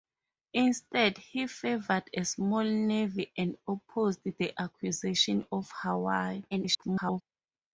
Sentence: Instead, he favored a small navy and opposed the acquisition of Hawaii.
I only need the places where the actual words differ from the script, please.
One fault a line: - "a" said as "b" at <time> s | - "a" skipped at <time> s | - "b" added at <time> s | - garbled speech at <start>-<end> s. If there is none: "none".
- garbled speech at 6.5-7.2 s